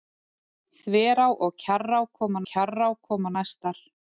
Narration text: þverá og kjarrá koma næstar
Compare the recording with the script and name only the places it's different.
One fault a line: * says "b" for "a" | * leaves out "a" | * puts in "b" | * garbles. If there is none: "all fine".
* puts in "kjarrá koma"